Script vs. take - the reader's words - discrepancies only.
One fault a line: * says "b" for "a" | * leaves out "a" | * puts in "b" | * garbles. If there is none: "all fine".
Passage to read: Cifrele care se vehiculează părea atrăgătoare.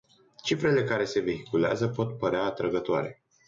* puts in "pot"